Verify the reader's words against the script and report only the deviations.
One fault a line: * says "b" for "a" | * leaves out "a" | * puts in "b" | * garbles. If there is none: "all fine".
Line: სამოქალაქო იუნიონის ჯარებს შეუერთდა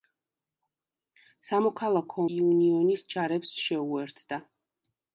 all fine